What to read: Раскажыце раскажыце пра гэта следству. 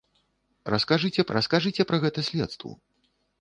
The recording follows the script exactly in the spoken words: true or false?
true